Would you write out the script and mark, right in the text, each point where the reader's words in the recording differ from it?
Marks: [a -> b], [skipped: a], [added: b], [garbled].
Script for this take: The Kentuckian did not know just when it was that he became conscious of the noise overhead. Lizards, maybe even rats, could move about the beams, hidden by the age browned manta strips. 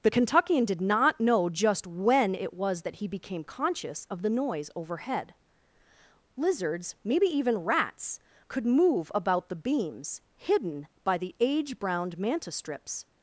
The Kentuckian did not know just when it was that he became conscious of the noise overhead. Lizards, maybe even rats, could move about the beams, hidden by the age browned manta strips.